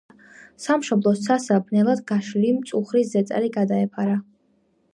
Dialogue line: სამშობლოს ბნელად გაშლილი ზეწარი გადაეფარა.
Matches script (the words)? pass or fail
fail